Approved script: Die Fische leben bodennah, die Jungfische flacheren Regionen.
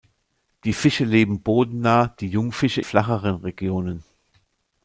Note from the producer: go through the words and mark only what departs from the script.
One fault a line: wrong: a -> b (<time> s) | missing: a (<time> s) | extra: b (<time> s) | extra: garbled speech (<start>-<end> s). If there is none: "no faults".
no faults